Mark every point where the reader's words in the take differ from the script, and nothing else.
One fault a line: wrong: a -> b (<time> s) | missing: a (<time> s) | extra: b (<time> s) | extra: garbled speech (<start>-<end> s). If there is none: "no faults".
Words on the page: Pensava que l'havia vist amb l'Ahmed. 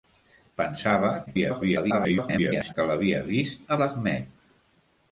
extra: garbled speech (1.3-2.7 s)
missing: amb (3.7 s)